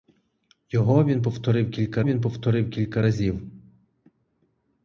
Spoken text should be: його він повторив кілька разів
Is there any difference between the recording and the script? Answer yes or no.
yes